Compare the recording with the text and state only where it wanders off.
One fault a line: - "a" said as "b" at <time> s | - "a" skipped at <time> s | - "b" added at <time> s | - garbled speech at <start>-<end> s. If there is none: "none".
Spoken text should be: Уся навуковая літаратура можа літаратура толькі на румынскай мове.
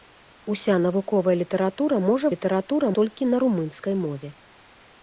none